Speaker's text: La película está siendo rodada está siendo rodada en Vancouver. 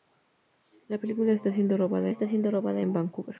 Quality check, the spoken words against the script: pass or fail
pass